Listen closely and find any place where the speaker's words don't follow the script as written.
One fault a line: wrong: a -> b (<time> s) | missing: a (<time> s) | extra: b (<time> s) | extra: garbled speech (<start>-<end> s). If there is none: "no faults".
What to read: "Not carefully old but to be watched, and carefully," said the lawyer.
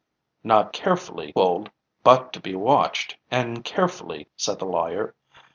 no faults